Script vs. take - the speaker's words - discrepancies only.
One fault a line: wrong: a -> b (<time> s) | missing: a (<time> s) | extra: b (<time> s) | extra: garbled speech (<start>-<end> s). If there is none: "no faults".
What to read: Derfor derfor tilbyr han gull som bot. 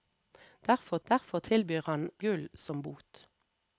no faults